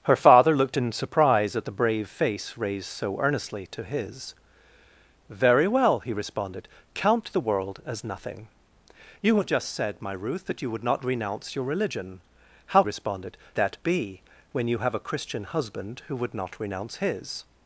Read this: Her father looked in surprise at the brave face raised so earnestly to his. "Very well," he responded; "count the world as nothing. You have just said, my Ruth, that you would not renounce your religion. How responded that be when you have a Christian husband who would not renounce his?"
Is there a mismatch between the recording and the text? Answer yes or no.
no